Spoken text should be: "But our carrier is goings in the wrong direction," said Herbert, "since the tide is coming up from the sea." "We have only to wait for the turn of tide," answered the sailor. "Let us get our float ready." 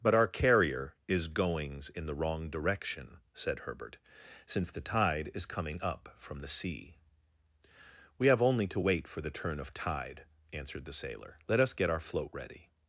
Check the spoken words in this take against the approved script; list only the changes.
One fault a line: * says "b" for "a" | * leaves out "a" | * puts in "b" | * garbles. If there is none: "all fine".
all fine